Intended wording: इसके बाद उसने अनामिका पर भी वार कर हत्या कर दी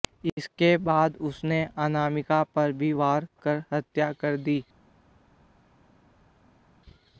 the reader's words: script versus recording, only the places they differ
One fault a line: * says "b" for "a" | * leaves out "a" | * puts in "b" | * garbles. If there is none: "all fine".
all fine